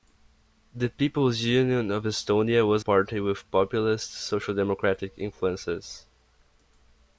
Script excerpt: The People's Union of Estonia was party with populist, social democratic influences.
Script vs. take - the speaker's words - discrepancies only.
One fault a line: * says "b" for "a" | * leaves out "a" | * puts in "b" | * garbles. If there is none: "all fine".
all fine